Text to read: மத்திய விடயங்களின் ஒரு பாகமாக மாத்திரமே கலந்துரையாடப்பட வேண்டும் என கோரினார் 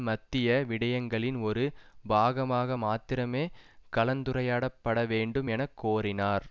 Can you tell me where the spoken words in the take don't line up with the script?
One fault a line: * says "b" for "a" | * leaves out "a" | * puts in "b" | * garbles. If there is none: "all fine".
all fine